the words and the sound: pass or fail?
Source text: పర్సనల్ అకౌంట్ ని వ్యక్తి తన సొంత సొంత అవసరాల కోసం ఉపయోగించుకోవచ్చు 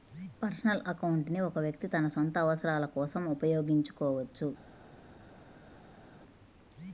fail